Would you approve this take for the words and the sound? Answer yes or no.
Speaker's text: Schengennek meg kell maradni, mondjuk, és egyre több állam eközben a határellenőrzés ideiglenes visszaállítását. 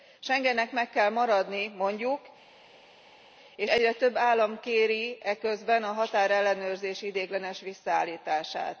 no